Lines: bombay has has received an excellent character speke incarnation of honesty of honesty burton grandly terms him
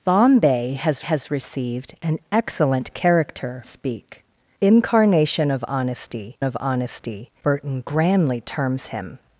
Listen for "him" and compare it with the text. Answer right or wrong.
right